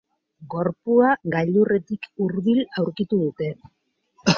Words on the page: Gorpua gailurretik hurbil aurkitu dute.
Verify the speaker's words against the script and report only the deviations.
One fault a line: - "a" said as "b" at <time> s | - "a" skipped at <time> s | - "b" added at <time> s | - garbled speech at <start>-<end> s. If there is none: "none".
none